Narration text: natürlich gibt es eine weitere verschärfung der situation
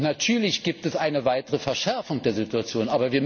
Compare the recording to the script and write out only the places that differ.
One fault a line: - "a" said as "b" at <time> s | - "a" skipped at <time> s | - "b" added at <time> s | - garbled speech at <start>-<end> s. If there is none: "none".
none